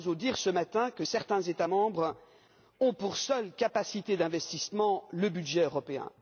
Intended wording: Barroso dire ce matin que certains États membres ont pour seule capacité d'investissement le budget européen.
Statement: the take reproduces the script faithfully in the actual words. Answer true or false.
true